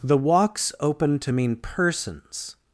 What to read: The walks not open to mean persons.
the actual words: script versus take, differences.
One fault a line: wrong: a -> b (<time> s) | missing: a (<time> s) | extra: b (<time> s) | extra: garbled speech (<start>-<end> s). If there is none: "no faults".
missing: not (0.7 s)